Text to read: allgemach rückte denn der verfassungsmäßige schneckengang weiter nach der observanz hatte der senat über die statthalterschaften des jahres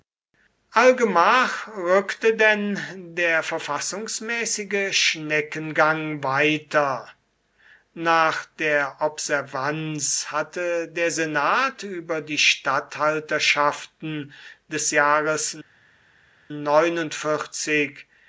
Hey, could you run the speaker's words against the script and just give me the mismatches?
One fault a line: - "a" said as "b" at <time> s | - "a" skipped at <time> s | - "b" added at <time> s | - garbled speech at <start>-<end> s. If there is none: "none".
none